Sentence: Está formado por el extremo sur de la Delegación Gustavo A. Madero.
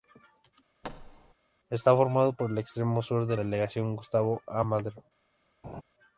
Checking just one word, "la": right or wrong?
wrong